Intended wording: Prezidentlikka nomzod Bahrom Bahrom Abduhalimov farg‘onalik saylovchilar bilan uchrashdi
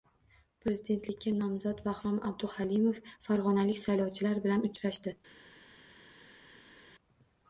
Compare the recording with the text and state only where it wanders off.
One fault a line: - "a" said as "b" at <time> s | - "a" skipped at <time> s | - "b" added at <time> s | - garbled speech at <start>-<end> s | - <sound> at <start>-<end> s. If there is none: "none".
- "Bahrom" skipped at 2.2 s